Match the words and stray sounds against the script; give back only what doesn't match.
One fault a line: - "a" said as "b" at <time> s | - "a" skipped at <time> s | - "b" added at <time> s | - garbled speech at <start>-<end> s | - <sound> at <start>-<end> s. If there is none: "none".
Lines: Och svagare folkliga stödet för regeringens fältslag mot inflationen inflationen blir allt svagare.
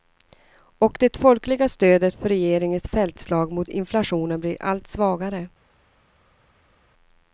- "svagare" said as "det" at 1.0 s
- "inflationen" skipped at 4.4 s